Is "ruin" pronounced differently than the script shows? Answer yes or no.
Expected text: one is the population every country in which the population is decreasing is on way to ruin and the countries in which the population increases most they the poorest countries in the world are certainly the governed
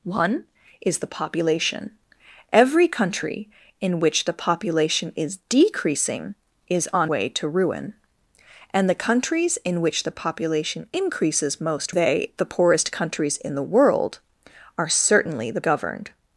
no